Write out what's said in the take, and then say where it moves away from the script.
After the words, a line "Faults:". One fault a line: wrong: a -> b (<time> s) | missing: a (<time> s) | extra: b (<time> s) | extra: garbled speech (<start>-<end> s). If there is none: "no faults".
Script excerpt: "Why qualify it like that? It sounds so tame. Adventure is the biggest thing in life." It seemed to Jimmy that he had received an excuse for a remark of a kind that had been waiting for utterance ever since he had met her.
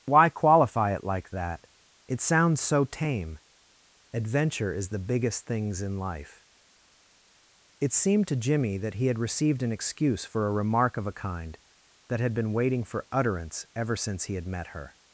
"Why qualify it like that? It sounds so tame. Adventure is the biggest things in life." It seemed to Jimmy that he had received an excuse for a remark of a kind that had been waiting for utterance ever since he had met her.
Faults:
wrong: thing -> things (5.5 s)